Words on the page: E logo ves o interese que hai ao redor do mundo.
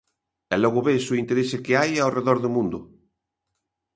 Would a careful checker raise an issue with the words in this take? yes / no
no